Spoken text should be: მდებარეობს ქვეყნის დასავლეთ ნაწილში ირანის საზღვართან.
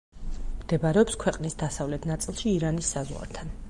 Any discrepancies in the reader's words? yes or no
no